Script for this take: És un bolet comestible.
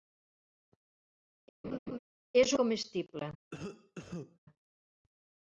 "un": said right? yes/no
no